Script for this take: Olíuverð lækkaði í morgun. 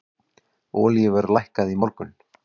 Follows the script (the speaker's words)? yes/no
yes